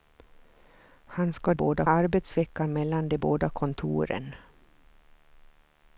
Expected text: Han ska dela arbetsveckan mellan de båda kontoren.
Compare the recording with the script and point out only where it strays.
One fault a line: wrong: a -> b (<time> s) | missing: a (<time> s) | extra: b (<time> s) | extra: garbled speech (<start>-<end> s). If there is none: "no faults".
wrong: dela -> båda (1.5 s)